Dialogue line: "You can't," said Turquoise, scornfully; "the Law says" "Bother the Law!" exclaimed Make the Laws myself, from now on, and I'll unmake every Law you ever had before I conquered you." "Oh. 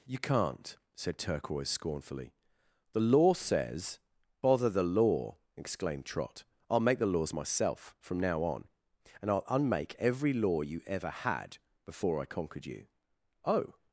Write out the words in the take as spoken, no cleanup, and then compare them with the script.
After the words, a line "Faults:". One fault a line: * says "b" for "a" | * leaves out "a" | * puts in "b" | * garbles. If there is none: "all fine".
"You can't," said Turquoise, scornfully; "the Law says" "Bother the Law!" exclaimed Trot. "I'll make the Laws myself, from now on, and I'll unmake every Law you ever had before I conquered you." "Oh.
Faults:
* puts in "Trot I'll"